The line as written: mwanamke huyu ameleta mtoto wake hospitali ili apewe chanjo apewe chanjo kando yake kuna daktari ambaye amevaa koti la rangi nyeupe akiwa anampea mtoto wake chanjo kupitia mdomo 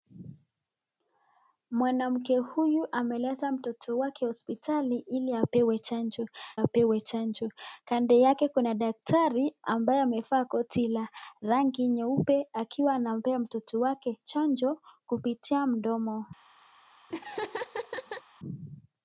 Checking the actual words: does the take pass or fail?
pass